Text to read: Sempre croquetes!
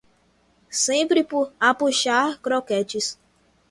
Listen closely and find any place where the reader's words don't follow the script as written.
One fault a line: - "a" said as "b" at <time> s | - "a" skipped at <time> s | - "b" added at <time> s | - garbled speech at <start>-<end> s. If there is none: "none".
- "a puxar" added at 1.6 s